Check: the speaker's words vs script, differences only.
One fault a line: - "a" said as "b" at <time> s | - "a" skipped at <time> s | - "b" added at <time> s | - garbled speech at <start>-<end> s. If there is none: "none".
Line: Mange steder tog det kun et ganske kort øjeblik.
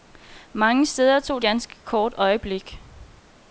- "det kun et" skipped at 1.4 s